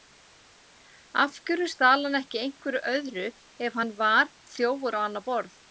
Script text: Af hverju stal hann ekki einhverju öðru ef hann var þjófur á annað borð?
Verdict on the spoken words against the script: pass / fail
pass